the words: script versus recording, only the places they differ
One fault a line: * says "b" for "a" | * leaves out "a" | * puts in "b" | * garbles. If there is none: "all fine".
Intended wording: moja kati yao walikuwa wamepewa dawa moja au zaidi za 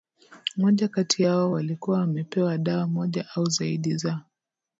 all fine